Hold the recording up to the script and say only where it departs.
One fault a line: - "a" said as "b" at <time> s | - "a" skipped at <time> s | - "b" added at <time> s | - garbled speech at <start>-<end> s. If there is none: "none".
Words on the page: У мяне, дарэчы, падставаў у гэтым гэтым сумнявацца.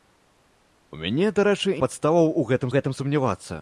none